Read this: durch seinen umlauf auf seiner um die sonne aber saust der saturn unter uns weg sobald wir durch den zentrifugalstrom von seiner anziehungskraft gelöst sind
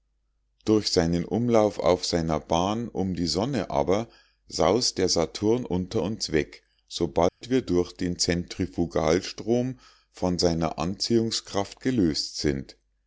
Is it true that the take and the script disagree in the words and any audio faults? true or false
true